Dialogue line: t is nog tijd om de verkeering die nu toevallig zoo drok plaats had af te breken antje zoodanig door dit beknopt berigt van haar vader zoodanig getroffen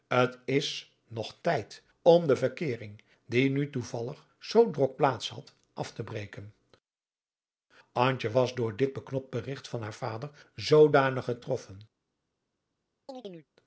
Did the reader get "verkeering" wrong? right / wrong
right